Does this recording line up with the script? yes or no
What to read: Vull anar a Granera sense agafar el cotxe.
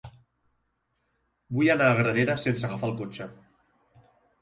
yes